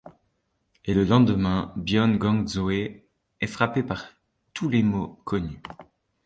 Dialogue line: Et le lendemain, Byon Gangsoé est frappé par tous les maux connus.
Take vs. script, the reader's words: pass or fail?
pass